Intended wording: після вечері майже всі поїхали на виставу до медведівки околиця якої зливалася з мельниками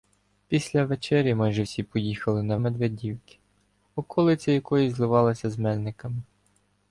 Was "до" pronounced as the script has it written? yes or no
no